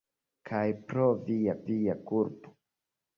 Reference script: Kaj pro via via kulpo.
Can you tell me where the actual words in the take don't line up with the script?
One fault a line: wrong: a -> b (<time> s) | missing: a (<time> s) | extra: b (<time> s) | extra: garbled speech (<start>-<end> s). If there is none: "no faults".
no faults